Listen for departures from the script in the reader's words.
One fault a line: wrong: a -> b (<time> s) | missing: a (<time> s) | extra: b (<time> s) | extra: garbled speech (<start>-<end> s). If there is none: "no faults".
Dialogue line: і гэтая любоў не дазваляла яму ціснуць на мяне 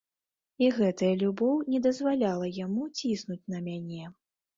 no faults